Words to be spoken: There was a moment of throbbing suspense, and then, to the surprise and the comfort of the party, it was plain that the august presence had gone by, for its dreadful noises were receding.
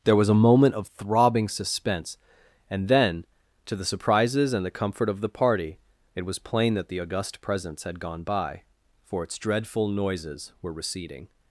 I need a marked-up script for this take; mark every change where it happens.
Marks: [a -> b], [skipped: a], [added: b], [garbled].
There was a moment of throbbing suspense, and then, to the [surprise -> surprises] and the comfort of the party, it was plain that the august presence had gone by, for its dreadful noises were receding.